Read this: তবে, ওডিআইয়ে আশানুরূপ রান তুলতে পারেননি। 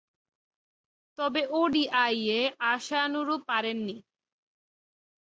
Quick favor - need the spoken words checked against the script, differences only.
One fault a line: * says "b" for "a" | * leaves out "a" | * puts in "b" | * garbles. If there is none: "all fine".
* leaves out "রান তুলতে"